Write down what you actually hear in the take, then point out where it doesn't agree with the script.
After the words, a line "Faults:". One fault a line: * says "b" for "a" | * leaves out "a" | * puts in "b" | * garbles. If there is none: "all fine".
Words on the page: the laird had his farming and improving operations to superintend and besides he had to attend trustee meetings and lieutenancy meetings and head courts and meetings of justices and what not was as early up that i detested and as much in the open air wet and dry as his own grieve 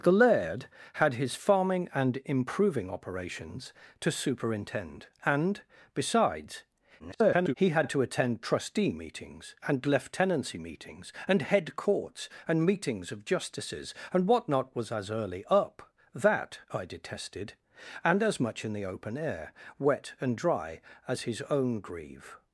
the laird had his farming and improving operations to superintend and besides [garbled] he had to attend trustee meetings and lieutenancy meetings and head courts and meetings of justices and what not was as early up that i detested and as much in the open air wet and dry as his own grieve
Faults:
* garbles